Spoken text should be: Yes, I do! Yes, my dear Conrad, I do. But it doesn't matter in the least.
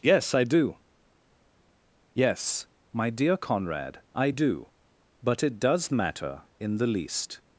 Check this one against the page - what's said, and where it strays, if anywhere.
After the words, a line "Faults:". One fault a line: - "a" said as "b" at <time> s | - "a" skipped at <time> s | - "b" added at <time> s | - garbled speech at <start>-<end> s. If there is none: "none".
Yes, I do! Yes, my dear Conrad, I do. But it does matter in the least.
Faults:
- "doesn't" said as "does" at 5.6 s